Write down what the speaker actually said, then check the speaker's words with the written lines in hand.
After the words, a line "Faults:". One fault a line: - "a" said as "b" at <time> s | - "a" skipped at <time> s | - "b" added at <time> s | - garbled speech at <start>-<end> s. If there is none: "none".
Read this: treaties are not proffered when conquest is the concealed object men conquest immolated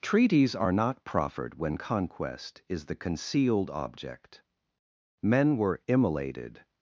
treaties are not proffered when conquest is the concealed object men were immolated
Faults:
- "conquest" said as "were" at 5.6 s